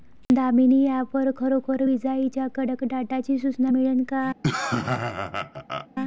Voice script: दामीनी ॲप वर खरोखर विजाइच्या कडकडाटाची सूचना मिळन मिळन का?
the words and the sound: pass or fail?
fail